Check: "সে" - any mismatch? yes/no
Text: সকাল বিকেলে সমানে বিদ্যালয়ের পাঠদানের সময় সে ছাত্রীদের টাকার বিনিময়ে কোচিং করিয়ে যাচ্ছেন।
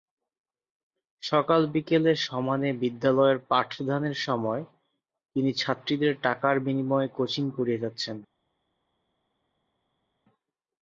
yes